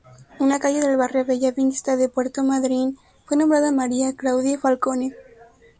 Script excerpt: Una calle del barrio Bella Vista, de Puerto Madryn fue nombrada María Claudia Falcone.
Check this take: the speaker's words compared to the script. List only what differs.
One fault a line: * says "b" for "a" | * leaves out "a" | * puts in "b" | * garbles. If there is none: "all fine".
all fine